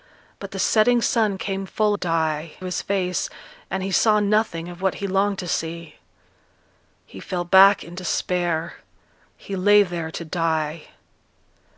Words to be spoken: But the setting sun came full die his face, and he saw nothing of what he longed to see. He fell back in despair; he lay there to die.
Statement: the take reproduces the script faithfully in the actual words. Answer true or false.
true